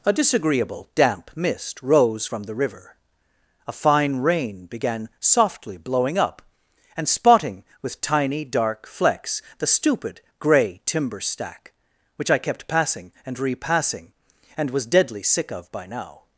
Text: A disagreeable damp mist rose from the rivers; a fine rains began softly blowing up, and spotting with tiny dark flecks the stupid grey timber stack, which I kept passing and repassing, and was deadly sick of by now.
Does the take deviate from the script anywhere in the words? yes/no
yes